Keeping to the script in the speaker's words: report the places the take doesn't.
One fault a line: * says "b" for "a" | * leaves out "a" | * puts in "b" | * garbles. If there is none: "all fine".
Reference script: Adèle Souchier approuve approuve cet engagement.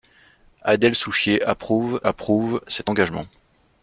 all fine